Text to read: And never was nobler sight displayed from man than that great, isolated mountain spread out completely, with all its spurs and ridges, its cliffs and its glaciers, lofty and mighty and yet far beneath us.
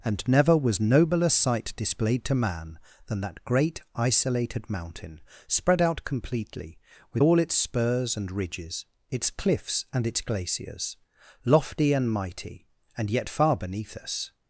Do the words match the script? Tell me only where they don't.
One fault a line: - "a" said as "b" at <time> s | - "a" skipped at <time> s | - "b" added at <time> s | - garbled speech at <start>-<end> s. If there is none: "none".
- "from" said as "to" at 2.2 s